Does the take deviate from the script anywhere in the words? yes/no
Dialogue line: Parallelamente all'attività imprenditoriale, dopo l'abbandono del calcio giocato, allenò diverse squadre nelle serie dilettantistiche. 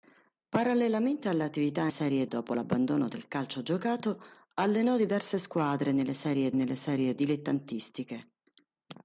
yes